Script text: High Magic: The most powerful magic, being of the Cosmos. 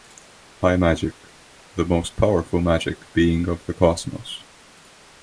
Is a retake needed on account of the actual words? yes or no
no